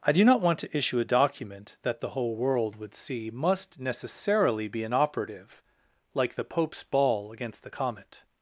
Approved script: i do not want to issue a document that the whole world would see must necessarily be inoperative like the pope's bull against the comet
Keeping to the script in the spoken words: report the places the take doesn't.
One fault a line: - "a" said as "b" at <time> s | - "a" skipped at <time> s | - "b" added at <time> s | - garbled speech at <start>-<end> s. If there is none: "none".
- "bull" said as "ball" at 6.8 s